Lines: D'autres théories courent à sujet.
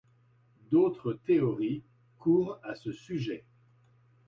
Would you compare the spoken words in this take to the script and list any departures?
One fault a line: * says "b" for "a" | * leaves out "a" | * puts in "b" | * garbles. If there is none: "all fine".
* puts in "ce"